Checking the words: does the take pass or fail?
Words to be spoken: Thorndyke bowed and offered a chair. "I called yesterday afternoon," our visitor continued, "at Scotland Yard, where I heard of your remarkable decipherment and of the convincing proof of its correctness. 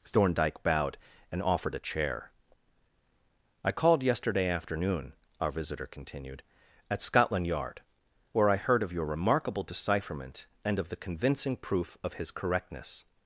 fail